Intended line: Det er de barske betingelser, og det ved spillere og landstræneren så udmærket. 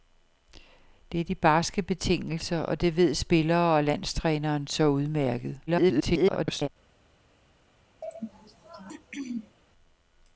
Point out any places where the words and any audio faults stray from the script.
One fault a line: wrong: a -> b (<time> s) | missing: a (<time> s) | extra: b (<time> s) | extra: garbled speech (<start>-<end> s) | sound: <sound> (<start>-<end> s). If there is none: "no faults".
extra: garbled speech (5.7-6.7 s)
sound: throat clearing (8.0-9.6 s)